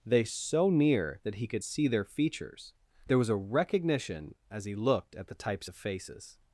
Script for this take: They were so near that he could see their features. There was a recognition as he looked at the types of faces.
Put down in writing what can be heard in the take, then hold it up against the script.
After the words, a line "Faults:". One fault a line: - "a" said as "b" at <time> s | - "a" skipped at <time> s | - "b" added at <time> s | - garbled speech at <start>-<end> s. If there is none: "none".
They so near that he could see their features. There was a recognition as he looked at the types of faces.
Faults:
- "were" skipped at 0.2 s